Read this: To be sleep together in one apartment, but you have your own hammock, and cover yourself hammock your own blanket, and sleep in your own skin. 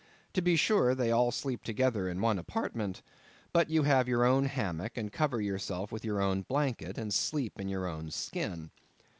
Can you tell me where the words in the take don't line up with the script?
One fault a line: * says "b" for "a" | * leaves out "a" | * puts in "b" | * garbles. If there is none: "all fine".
* puts in "sure they all"
* says "with" for "hammock"